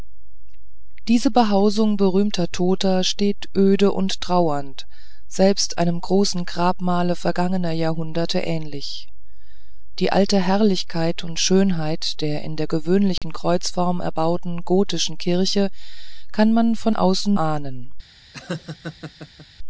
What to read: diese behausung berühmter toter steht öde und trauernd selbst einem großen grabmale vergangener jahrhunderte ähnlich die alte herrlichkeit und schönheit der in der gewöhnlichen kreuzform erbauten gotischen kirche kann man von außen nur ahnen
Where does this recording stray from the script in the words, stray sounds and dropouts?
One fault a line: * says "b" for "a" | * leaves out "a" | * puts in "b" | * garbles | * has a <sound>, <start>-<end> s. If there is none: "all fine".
* has a dropout, 13.2-13.2 s
* leaves out "nur"
* has a laugh, 18.3-19.5 s